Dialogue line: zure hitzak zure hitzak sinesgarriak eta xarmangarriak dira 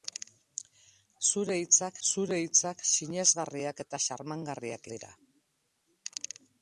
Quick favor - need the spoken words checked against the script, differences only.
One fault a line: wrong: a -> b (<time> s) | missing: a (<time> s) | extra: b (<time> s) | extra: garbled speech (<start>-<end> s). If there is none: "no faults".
no faults